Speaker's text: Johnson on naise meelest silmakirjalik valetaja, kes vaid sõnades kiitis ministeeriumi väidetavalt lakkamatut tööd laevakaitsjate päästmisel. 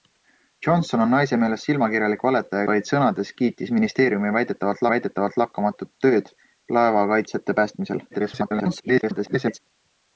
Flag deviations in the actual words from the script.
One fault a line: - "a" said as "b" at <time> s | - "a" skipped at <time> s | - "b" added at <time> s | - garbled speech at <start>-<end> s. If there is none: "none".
- "kes" skipped at 2.7 s
- "väidetavalt" added at 4.9 s
- garbled speech at 8.1-9.6 s